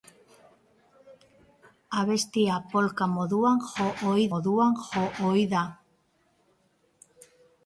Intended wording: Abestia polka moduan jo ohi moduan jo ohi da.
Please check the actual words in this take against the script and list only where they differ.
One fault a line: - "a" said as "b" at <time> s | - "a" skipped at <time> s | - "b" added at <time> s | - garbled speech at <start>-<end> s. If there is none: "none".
none